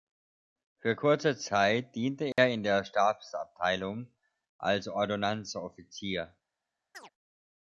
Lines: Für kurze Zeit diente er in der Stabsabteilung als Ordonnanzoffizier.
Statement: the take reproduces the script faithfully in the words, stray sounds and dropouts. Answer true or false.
false